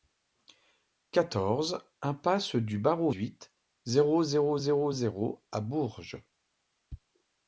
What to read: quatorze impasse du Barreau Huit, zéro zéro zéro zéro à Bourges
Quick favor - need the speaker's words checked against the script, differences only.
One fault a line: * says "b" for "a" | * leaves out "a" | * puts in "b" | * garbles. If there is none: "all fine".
all fine